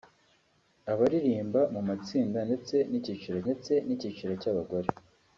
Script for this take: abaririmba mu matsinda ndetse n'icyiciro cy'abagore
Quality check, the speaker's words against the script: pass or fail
fail